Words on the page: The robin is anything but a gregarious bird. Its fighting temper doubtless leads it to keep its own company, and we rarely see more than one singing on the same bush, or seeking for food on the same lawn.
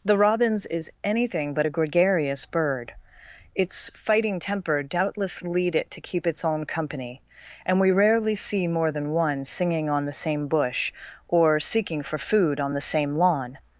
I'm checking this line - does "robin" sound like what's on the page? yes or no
no